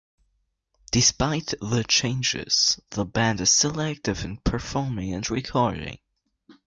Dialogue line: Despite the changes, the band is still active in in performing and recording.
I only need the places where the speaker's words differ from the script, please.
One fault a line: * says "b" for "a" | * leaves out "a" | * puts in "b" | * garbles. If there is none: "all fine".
* leaves out "in"